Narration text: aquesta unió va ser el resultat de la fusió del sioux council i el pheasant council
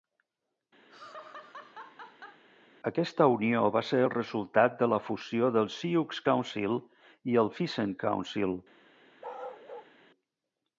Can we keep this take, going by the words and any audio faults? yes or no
no